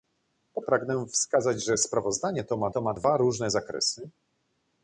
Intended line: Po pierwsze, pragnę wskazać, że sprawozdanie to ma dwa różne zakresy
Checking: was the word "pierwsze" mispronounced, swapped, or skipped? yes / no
yes